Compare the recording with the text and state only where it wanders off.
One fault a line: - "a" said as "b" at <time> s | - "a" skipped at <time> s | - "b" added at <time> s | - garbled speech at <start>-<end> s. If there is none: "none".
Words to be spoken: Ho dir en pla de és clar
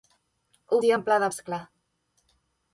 none